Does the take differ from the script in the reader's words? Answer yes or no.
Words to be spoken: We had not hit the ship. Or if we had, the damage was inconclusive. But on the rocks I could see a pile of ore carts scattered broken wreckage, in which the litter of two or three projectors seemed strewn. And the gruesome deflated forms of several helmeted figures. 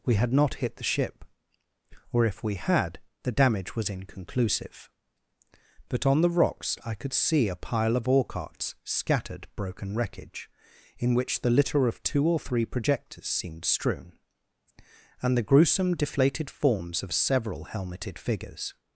no